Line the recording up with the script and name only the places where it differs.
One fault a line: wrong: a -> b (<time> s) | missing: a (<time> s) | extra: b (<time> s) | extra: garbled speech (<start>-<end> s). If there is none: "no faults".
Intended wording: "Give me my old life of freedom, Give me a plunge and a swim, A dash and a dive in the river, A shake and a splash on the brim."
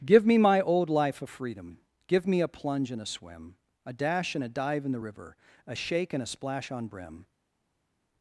missing: the (6.9 s)